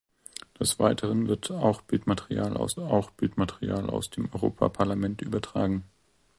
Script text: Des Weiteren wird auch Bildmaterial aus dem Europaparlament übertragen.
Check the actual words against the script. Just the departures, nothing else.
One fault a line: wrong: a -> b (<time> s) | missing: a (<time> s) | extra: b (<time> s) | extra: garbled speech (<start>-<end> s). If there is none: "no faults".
extra: auch Bildmaterial aus (2.8 s)